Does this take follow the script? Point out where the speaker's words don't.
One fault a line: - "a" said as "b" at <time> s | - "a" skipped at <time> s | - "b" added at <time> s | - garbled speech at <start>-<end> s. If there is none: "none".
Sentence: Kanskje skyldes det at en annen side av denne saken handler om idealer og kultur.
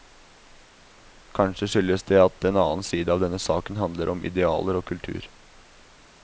none